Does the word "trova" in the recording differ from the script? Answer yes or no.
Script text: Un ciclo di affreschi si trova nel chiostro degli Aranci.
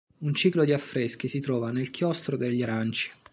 no